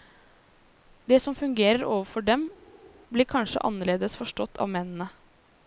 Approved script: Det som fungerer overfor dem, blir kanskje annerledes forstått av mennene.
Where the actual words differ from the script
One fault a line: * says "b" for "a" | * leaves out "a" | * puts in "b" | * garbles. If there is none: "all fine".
all fine